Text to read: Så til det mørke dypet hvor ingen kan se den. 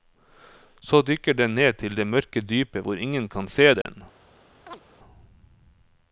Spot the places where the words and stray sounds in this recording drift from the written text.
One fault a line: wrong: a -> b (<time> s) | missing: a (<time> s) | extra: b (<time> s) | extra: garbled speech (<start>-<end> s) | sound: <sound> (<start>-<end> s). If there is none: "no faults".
extra: dykker den ned (1.0 s)
sound: dropout (3.8-3.9 s)
sound: chirp (4.7-4.8 s)